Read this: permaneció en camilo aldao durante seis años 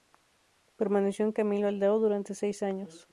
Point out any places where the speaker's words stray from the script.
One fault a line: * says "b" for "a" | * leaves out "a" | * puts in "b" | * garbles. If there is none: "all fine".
all fine